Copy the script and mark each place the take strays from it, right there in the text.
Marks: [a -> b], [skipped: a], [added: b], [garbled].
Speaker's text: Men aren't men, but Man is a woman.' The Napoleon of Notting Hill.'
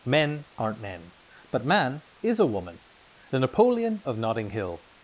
Men aren't men, but Man is a woman.' The Napoleon of Notting Hill.'